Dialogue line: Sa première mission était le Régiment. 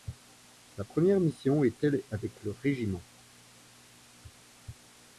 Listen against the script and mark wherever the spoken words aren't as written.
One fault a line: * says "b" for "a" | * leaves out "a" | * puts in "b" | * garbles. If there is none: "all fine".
* puts in "avec"